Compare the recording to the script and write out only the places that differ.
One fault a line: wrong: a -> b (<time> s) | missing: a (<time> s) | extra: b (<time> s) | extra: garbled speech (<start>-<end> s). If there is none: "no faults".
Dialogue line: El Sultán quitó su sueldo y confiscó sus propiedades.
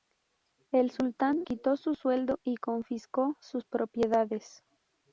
no faults